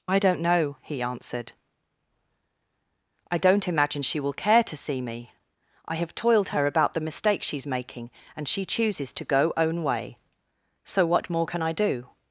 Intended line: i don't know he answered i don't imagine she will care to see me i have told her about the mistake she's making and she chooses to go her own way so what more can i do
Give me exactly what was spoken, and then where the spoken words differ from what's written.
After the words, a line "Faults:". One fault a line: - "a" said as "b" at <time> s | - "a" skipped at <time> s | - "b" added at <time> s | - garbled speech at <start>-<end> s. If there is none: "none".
i don't know he answered i don't imagine she will care to see me i have toiled her about the mistake she's making and she chooses to go own way so what more can i do
Faults:
- "told" said as "toiled" at 6.1 s
- "her" skipped at 9.5 s